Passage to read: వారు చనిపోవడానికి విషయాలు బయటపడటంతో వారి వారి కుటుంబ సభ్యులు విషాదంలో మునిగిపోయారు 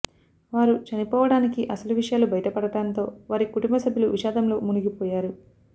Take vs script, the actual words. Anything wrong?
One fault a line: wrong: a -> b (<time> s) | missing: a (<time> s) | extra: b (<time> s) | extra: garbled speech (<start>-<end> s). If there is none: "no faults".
extra: అసలు (1.7 s)
missing: వారి (3.5 s)